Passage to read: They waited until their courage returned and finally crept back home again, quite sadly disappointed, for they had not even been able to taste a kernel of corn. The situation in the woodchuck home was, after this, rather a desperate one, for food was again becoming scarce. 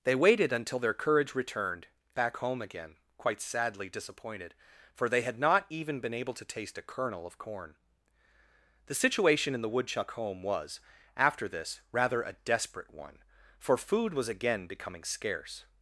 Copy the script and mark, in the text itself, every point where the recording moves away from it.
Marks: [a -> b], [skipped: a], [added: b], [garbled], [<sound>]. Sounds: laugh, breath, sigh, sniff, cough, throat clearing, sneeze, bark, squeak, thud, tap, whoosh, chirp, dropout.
They waited until their courage returned [skipped: and finally crept] back home again, quite sadly disappointed, for they had not even been able to taste a kernel of corn. The situation in the woodchuck home was, after this, rather a desperate one, for food was again becoming scarce.